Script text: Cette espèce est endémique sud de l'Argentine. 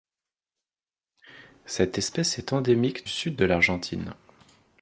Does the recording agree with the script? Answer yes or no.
yes